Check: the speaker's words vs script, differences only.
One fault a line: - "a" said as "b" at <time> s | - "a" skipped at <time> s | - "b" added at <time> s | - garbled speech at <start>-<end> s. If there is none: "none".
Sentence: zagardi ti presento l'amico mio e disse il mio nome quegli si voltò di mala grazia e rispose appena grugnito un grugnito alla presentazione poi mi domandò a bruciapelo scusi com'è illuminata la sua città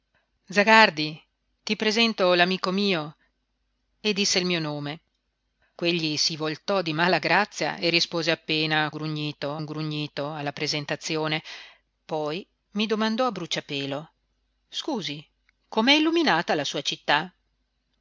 none